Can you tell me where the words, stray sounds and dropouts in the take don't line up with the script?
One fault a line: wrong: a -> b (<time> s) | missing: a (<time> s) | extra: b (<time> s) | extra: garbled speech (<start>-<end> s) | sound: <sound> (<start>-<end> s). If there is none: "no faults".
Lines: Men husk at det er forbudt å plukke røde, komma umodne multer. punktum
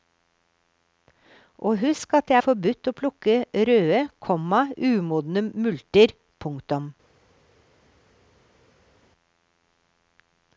wrong: Men -> Og (1.6 s)